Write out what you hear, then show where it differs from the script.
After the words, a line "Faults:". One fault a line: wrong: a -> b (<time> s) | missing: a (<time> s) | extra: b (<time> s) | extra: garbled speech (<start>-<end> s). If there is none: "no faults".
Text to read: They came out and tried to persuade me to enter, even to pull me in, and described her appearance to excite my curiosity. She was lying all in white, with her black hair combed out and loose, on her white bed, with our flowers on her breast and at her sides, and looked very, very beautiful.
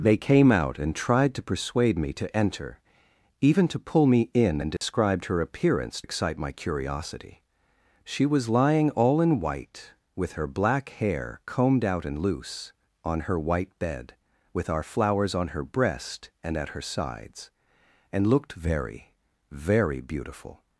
They came out and tried to persuade me to enter, even to pull me in, and described her appearance excite my curiosity. She was lying all in white, with her black hair combed out and loose, on her white bed, with our flowers on her breast and at her sides, and looked very, very beautiful.
Faults:
missing: to (6.0 s)